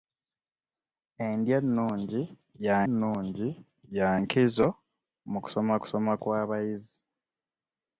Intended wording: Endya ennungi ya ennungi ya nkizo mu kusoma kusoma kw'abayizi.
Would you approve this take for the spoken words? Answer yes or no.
yes